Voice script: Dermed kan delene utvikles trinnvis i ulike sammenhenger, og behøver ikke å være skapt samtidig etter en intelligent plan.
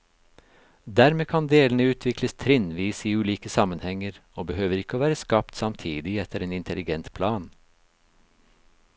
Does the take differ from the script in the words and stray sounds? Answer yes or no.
no